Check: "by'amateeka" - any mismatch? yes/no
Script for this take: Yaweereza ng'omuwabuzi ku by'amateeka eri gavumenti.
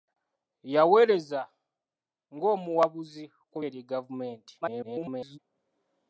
yes